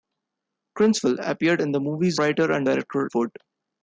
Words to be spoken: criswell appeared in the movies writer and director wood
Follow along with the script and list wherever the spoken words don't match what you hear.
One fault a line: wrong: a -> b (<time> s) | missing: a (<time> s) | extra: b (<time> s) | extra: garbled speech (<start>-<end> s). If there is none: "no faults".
no faults